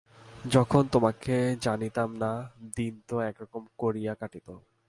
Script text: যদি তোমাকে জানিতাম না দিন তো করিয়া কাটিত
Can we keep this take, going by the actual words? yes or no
no